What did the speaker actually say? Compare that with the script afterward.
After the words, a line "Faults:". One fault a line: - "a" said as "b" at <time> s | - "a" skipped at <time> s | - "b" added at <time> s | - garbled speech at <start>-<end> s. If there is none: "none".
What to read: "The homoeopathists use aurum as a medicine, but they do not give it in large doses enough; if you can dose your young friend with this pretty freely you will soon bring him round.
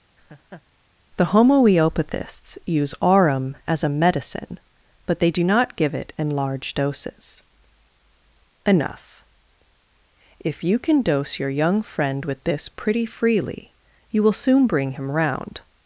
"The homoeopathists use aurum as a medicine, but they do not give it in large doses enough; if you can dose your young friend with this pretty freely you will soon bring him round.
Faults:
none